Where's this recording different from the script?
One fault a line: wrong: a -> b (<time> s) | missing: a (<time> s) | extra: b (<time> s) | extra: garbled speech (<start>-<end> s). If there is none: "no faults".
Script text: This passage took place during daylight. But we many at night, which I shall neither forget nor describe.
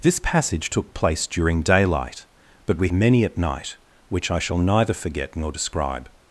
no faults